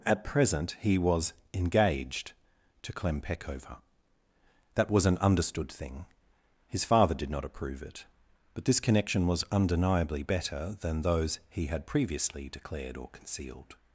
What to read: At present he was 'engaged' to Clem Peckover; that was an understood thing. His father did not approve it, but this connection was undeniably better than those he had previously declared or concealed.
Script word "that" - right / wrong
right